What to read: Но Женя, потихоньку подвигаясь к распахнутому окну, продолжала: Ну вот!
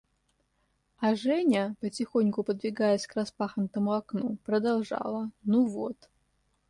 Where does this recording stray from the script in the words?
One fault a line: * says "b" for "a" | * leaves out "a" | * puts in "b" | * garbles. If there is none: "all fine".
* says "А" for "Но"